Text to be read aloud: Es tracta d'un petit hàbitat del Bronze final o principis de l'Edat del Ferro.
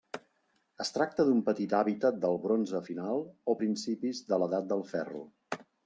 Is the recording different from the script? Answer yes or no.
no